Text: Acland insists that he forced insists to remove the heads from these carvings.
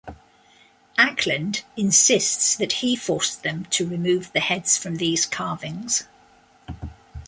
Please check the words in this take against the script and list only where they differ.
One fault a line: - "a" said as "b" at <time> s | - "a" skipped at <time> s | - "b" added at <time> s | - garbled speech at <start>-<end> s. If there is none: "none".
- "insists" said as "them" at 3.4 s